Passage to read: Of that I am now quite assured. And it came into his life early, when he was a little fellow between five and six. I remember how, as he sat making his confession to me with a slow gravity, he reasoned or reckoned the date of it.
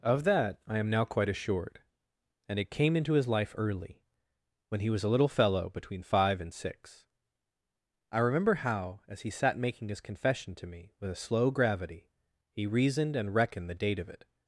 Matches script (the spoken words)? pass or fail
fail